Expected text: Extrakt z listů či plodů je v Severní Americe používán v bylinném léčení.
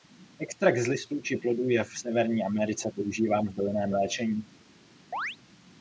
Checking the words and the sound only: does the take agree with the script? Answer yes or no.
no